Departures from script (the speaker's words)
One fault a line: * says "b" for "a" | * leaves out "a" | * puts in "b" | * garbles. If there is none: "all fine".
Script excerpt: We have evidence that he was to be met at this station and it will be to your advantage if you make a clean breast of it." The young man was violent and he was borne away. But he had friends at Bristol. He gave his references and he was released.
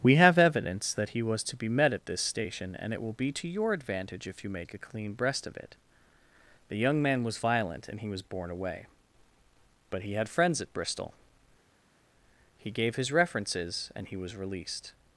all fine